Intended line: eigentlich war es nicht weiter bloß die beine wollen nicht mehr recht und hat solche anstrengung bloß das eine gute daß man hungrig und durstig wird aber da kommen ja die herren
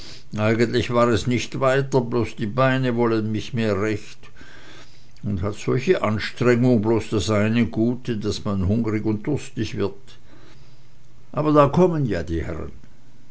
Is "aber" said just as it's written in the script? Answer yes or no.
yes